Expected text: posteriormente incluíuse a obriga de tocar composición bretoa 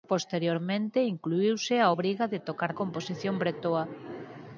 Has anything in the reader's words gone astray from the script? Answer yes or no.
no